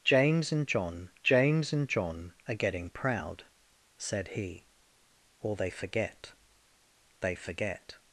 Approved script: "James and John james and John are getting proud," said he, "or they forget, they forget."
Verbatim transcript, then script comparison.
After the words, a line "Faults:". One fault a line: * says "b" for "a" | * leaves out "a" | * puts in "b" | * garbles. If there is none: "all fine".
"James and John james and John are getting proud," said he, "or they forget, they forget."
Faults:
all fine